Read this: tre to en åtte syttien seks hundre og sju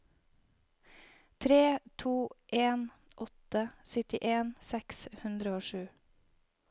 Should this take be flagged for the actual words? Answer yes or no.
no